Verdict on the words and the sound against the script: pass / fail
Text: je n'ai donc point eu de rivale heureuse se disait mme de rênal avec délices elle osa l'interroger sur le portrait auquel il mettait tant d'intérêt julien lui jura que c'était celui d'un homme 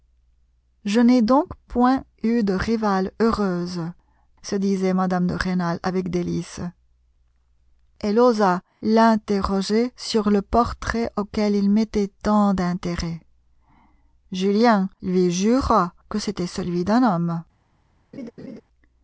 fail